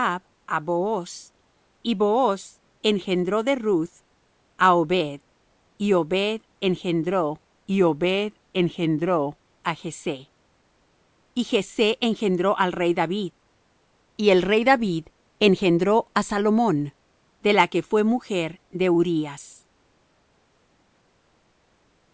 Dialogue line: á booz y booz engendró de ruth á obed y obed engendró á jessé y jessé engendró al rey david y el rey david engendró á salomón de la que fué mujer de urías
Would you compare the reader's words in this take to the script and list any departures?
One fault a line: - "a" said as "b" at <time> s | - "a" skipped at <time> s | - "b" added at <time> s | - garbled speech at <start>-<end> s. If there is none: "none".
- "y obed engendró" added at 7.7 s